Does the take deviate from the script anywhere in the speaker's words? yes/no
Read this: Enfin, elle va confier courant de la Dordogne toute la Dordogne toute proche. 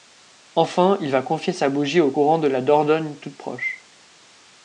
yes